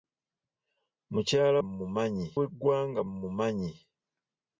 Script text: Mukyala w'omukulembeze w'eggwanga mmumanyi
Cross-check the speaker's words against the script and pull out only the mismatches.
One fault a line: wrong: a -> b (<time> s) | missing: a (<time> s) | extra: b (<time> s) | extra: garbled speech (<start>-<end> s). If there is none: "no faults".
wrong: w'omukulembeze -> mmumanyi (1.7 s)